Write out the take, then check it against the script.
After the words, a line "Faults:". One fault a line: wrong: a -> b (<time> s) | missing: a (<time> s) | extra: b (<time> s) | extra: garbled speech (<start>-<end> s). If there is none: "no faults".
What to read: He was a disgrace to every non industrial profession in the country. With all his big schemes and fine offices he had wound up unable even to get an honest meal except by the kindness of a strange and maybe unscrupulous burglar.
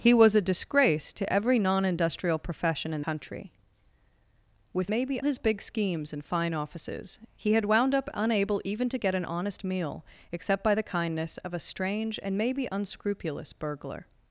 He was a disgrace to every non industrial profession in country. With maybe his big schemes and fine offices he had wound up unable even to get an honest meal except by the kindness of a strange and maybe unscrupulous burglar.
Faults:
missing: the (3.0 s)
wrong: all -> maybe (4.9 s)